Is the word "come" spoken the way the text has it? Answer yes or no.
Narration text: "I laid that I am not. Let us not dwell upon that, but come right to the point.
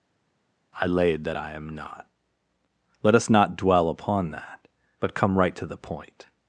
yes